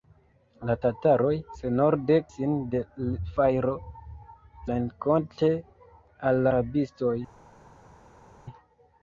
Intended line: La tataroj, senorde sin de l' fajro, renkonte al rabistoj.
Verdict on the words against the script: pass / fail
pass